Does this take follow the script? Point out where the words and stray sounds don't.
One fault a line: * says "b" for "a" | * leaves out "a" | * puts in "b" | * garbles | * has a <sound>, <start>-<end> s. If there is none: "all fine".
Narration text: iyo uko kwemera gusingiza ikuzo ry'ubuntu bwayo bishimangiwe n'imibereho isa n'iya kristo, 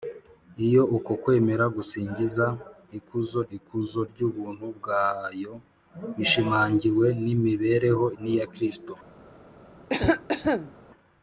* puts in "ikuzo"
* leaves out "isa"
* has a cough, 9.9-10.7 s